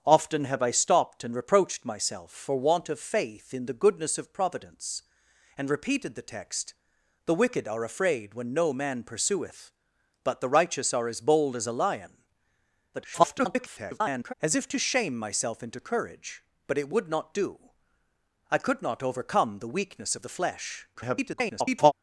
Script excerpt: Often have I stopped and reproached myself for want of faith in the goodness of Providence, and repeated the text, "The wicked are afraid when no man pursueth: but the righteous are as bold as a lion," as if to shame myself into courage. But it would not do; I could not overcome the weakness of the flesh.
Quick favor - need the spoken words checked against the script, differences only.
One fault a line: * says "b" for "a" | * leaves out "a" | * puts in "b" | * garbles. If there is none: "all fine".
* garbles
* garbles